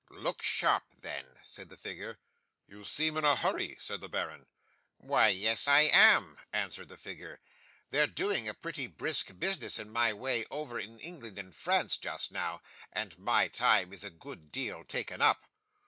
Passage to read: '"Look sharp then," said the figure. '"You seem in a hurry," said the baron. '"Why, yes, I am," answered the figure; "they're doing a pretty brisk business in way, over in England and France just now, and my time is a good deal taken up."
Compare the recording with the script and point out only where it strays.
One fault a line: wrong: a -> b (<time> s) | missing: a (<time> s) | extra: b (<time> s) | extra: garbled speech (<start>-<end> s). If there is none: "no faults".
extra: my (9.9 s)